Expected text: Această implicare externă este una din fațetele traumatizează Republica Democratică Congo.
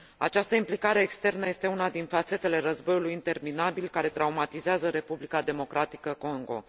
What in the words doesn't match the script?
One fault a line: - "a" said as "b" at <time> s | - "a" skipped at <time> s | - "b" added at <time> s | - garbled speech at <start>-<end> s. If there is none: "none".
- "războiului interminabil care" added at 2.6 s